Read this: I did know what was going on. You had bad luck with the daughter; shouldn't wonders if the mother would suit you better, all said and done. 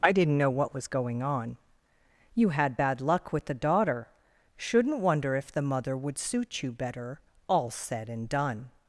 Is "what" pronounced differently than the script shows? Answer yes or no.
no